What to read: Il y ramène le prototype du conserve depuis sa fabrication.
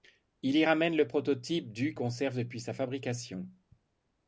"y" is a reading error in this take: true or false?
false